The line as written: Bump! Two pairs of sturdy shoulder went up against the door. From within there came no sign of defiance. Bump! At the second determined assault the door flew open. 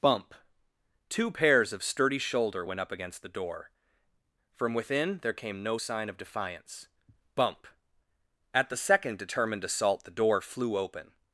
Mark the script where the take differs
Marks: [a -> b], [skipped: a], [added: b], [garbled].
Bump! Two pairs of sturdy shoulder went up against the door. From within there came no sign of defiance. Bump! At the second determined assault the door flew open.